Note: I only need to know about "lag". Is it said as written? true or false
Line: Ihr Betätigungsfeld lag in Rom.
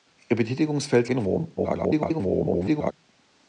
false